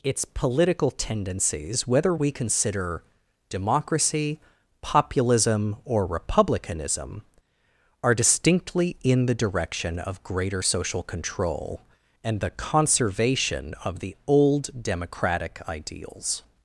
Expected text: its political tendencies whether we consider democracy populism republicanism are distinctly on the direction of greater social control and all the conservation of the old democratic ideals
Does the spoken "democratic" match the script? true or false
true